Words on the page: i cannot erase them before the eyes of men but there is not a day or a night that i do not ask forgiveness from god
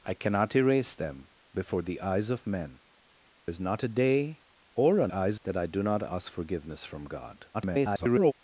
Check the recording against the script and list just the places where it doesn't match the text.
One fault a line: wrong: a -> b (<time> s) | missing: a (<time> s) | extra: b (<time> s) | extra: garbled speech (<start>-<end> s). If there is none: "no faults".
missing: but there (2.8 s)
wrong: night -> eyes (5.1 s)
extra: garbled speech (7.5-8.3 s)